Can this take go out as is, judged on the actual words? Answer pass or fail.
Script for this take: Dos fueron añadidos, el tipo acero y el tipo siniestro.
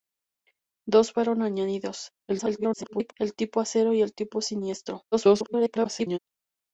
fail